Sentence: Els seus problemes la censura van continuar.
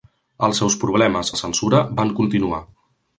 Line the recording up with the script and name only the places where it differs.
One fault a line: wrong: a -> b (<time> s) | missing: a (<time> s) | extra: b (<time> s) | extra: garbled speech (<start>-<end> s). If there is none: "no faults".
no faults